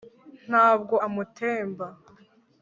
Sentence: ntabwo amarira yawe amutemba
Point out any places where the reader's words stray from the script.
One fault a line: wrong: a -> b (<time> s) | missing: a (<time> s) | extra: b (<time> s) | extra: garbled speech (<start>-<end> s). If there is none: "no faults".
missing: amarira yawe (0.9 s)